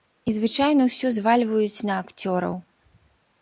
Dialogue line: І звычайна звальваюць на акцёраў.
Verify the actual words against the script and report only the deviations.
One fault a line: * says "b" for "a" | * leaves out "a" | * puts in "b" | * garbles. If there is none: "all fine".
* puts in "ўсё"